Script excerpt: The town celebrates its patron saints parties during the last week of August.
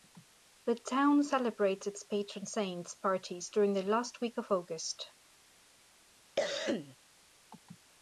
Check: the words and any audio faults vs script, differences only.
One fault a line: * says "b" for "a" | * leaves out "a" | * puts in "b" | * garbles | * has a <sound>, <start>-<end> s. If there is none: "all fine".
* has a cough, 6.4-7.0 s